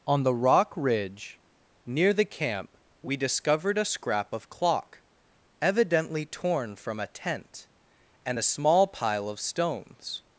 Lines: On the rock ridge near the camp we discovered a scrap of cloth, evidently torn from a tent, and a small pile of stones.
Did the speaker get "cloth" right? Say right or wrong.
wrong